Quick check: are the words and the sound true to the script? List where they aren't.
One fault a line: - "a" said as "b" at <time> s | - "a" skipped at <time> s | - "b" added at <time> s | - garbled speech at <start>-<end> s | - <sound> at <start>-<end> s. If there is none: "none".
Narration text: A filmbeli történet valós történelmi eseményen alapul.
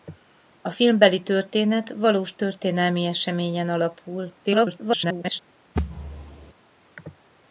- garbled speech at 4.4-5.4 s
- thud at 5.8-6.5 s